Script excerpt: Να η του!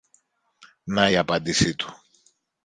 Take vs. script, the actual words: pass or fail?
fail